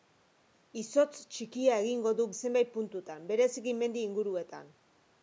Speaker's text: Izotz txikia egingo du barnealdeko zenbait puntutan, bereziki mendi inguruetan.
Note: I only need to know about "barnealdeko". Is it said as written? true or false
false